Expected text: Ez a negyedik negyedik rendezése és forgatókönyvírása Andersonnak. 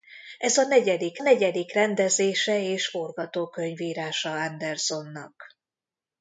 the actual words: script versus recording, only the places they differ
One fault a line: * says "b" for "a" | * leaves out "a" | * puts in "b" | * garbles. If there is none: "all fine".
all fine